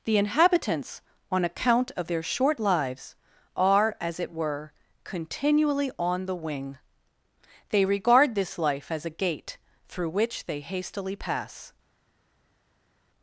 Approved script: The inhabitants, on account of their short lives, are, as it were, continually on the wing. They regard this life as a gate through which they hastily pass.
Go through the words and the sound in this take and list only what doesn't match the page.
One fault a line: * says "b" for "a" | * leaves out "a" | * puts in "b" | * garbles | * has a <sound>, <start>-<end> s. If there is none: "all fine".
all fine